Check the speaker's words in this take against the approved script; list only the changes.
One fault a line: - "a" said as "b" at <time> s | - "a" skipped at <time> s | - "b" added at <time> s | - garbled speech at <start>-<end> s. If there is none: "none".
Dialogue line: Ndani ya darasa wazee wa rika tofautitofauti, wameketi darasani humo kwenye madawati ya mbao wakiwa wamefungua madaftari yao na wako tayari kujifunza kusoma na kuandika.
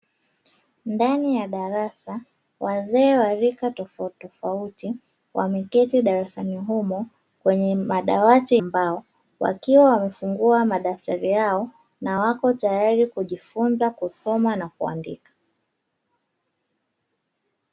- "ya" skipped at 8.6 s